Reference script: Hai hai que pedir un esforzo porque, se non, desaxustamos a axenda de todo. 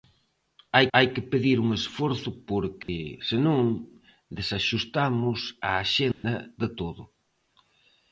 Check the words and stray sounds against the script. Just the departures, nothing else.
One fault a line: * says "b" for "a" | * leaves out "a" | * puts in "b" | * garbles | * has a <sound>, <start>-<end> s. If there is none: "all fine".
* has a dropout, 2.8-2.9 s
* has a dropout, 6.1-6.2 s